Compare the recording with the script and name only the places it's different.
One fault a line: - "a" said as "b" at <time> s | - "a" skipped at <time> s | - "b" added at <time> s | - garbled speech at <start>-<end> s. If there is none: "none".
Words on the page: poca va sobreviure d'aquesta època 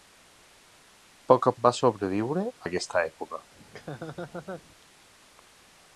none